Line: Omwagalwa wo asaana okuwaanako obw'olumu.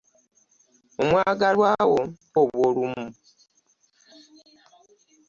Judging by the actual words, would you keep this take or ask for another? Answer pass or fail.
fail